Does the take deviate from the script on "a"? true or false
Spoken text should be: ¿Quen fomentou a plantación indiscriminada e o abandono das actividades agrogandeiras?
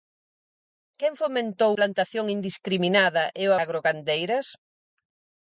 true